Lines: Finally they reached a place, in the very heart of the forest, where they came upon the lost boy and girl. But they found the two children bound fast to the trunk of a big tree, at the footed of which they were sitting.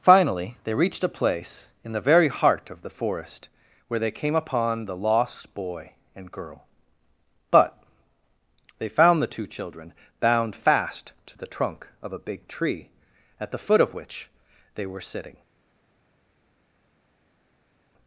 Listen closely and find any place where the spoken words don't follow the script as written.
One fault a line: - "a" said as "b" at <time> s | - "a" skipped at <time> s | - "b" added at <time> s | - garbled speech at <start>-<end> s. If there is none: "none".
- "footed" said as "foot" at 13.6 s